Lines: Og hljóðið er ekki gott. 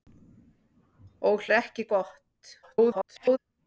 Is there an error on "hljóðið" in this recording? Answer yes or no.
yes